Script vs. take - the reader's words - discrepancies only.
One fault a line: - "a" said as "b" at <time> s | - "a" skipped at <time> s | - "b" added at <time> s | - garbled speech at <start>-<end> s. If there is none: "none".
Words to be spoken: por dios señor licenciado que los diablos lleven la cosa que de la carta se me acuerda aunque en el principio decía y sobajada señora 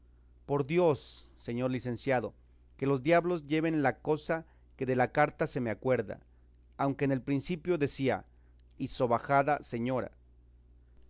none